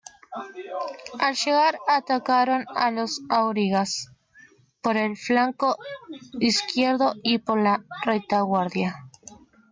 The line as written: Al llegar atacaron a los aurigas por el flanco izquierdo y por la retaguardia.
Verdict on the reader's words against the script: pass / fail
pass